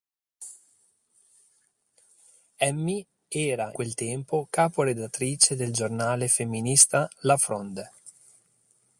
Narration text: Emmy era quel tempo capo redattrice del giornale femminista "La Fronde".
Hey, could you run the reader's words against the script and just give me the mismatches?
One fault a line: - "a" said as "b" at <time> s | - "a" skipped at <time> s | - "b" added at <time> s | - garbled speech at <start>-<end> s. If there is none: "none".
none